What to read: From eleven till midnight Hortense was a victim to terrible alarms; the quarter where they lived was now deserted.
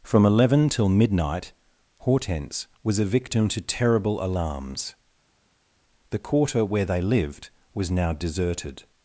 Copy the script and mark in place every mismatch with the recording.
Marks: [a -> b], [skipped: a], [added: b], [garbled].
From eleven till midnight Hortense was a victim to terrible alarms; the quarter where they lived was now deserted.